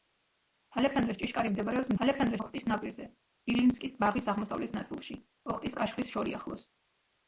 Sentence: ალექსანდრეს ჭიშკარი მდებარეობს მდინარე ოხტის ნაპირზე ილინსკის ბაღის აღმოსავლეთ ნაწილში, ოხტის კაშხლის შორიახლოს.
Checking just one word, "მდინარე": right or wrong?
wrong